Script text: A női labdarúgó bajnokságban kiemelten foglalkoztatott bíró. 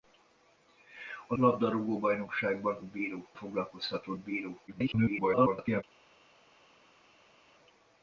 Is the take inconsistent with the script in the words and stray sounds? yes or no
yes